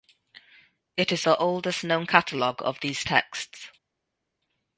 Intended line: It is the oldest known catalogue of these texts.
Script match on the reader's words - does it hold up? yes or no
yes